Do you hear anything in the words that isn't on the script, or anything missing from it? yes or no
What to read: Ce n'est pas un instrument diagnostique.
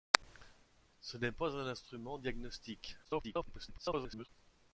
yes